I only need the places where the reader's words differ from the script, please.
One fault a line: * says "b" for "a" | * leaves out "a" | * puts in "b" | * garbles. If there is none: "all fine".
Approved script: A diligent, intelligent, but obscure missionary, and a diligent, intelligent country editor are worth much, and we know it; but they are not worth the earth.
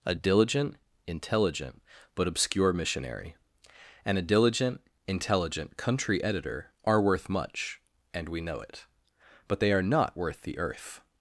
all fine